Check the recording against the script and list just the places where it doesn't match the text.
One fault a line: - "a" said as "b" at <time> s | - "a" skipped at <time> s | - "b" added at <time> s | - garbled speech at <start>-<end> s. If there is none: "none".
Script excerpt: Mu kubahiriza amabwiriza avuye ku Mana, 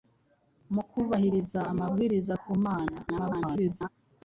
- "avuye" skipped at 2.3 s
- garbled speech at 3.1-3.9 s